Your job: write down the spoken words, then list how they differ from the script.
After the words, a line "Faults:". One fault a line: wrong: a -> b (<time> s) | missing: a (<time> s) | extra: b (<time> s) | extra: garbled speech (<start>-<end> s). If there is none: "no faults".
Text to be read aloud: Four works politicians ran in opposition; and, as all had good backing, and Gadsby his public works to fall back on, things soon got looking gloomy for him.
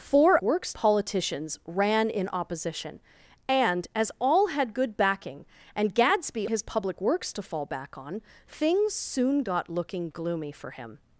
Four works politicians ran in opposition; and, as all had good backing, and Gadsby his public works to fall back on, things soon got looking gloomy for him.
Faults:
no faults